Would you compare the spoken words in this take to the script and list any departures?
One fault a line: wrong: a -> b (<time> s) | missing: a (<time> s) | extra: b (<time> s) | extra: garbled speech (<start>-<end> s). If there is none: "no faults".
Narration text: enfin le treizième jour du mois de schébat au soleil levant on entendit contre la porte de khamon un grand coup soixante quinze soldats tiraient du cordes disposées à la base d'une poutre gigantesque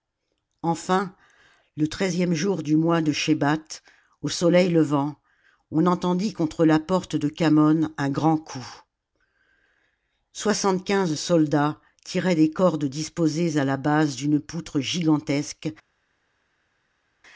wrong: du -> des (12.3 s)